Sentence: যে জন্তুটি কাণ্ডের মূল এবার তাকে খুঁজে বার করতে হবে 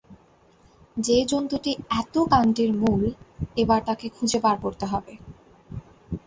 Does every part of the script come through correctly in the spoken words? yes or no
no